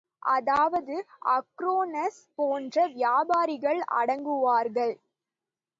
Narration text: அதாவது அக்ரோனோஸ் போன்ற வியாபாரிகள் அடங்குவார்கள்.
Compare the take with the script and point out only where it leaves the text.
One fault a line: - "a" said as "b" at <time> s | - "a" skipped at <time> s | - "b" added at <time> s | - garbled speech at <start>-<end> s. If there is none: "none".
none